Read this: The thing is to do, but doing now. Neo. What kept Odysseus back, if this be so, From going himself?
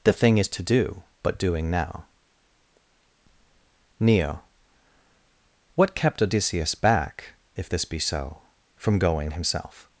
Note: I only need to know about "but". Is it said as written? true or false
true